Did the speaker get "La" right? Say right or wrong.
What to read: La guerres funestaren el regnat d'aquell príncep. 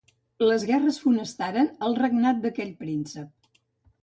wrong